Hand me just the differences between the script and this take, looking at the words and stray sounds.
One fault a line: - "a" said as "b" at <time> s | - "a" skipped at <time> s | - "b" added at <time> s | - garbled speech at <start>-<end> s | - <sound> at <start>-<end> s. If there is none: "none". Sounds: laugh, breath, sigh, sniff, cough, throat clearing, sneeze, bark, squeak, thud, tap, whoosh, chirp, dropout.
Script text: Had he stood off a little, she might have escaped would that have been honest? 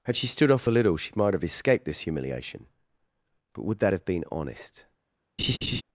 - "he" said as "she" at 0.1 s
- "this humiliation But" added at 1.8 s
- laugh at 5.4-5.8 s